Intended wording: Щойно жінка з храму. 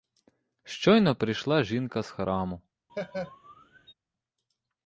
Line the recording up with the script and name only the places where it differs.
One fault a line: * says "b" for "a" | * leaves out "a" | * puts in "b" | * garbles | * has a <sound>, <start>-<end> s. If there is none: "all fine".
* puts in "прийшла"
* has a laugh, 2.9-3.9 s